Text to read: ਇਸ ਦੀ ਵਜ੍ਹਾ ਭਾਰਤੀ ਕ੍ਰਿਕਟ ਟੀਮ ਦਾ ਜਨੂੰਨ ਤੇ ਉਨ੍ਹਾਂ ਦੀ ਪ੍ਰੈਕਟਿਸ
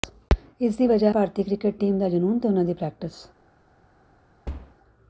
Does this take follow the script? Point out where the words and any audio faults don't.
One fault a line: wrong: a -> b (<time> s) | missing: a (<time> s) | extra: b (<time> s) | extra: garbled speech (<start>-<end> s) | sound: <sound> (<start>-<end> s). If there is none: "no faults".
sound: thud (4.5-4.8 s)